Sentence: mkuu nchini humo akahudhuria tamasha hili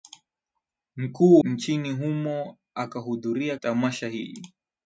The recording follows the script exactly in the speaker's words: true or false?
true